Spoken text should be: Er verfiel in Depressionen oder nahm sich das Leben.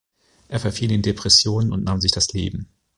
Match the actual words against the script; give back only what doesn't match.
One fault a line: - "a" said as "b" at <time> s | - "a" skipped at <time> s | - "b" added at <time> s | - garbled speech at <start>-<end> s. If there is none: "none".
- "oder" said as "und" at 1.7 s